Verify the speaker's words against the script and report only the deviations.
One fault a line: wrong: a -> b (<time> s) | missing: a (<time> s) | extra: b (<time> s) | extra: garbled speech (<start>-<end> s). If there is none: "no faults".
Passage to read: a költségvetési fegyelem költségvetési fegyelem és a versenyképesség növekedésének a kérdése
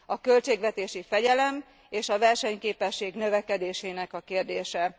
missing: költségvetési fegyelem (1.6 s)